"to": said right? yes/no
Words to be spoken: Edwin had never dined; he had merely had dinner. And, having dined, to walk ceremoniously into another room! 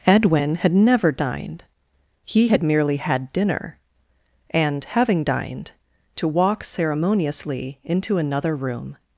yes